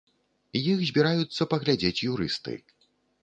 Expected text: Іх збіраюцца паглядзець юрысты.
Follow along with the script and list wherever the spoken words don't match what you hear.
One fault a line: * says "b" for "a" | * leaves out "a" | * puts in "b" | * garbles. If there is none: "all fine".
all fine